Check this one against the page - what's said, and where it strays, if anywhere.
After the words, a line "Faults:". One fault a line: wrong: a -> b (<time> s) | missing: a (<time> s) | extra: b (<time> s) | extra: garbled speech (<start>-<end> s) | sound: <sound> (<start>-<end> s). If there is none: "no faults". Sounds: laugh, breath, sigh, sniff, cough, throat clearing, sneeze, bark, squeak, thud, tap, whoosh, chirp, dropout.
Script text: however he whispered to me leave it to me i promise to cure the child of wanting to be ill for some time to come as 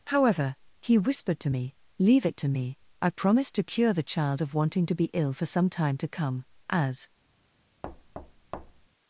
however he whispered to me leave it to me i promise to cure the child of wanting to be ill for some time to come as
Faults:
sound: thud (7.8-8.9 s)